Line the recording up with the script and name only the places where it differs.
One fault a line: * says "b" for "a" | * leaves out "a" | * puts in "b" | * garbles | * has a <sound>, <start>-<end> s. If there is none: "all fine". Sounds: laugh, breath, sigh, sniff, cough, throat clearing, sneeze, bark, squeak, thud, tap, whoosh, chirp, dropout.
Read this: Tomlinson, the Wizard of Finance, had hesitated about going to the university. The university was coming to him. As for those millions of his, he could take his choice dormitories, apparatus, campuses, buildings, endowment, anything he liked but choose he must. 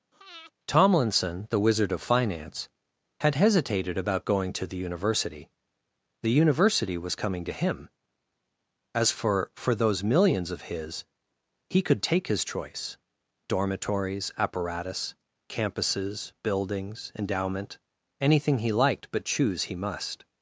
* has a breath, 0.1-0.5 s
* puts in "for"